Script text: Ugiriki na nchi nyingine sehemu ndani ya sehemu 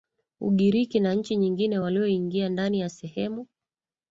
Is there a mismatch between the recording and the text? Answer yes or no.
yes